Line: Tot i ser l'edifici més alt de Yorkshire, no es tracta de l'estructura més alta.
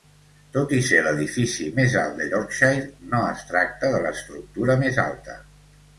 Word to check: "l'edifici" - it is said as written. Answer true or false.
true